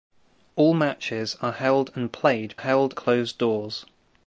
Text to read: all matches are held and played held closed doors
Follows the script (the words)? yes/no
yes